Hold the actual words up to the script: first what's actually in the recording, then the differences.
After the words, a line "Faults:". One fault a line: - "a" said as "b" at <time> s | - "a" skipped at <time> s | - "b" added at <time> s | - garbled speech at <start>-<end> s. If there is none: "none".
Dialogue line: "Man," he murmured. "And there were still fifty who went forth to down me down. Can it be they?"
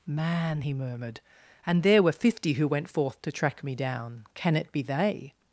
"Man," he murmured. "And there were fifty who went forth to track me down. Can it be they?"
Faults:
- "still" skipped at 2.1 s
- "down" said as "track" at 3.3 s